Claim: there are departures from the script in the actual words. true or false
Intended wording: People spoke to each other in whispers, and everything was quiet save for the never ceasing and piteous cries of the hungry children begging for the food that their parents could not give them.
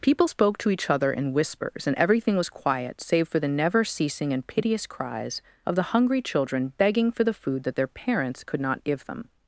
false